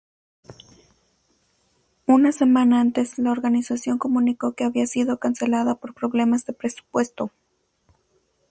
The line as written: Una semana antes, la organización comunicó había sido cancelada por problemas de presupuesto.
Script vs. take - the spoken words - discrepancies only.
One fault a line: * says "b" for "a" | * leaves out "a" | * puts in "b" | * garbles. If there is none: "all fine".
* puts in "que"